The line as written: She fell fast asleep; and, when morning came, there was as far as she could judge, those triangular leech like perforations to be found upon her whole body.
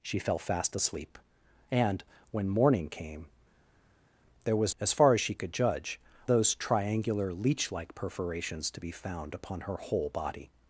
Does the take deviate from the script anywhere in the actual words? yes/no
no